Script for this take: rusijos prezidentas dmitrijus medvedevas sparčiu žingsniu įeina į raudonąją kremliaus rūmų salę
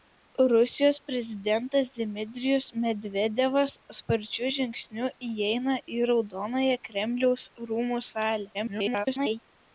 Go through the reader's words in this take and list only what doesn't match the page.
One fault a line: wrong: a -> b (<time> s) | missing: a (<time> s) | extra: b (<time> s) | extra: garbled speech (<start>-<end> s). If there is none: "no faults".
extra: garbled speech (8.5-9.4 s)